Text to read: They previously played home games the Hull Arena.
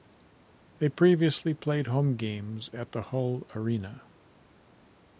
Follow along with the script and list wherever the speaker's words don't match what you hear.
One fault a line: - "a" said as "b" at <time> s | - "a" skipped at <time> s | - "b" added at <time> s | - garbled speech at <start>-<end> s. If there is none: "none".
- "at" added at 2.7 s